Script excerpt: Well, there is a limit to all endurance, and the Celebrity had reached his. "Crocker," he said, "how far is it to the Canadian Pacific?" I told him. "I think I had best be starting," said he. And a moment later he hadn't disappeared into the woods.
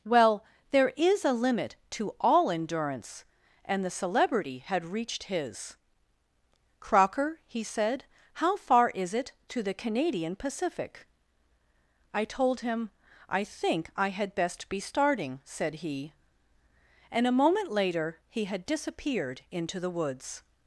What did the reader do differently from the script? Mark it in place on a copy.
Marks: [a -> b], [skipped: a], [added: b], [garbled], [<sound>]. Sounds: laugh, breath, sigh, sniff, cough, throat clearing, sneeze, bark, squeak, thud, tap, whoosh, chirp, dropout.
Well, there is a limit to all endurance, and the Celebrity had reached his. "Crocker," he said, "how far is it to the Canadian Pacific?" I told him. "I think I had best be starting," said he. And a moment later he [hadn't -> had] disappeared into the woods.